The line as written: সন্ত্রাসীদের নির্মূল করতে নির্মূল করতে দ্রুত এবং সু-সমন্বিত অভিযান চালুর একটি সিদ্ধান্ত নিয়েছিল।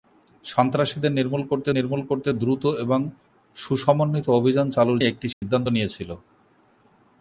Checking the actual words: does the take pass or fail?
pass